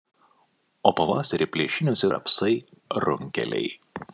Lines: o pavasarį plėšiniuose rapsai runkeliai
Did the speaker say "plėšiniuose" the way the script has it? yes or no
yes